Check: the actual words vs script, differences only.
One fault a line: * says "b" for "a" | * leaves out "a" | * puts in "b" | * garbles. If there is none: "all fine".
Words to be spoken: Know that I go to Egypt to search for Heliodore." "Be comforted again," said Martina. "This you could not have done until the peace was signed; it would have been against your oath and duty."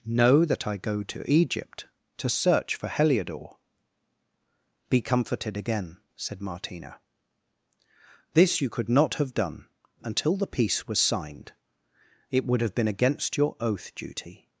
* leaves out "and"